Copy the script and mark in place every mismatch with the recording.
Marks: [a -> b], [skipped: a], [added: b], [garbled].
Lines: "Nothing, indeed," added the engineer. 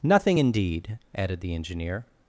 "Nothing, indeed," added the engineer.